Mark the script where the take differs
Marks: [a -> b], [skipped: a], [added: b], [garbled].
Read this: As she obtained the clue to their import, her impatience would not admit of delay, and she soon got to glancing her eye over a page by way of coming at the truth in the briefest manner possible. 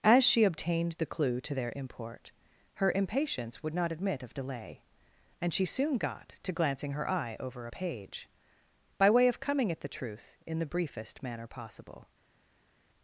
As she obtained the clue to their import, her impatience would not admit of delay, and she soon got to glancing her eye over a page by way of coming at the truth in the briefest manner possible.